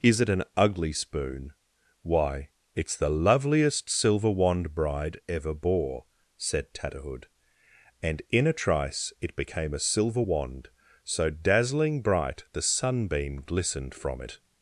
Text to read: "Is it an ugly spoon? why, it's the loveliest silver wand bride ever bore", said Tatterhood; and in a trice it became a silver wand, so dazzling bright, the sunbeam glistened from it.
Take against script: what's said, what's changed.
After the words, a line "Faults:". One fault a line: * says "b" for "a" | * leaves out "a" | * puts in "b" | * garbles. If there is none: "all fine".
"Is it an ugly spoon? why, it's the loveliest silver wand bride ever bore", said Tatterhood; and in a trice it became a silver wand, so dazzling bright, the sunbeam glistened from it.
Faults:
all fine